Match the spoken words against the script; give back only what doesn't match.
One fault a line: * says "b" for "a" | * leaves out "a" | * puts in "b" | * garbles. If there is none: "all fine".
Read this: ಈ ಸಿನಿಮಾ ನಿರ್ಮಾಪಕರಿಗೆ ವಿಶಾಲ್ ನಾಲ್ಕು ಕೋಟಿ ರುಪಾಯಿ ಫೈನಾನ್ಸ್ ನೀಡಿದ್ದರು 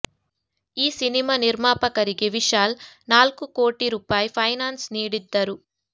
all fine